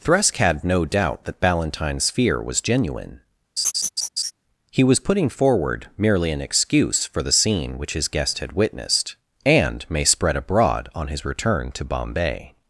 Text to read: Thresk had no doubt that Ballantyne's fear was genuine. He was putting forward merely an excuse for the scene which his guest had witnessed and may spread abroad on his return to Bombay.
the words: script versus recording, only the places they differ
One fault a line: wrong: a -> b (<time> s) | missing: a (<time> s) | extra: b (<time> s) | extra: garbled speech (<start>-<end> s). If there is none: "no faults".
no faults